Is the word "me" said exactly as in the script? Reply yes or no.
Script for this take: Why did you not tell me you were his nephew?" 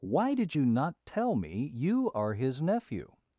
yes